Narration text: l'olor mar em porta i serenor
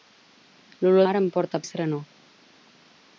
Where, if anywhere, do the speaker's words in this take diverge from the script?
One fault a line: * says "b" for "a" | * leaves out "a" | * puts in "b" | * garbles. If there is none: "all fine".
all fine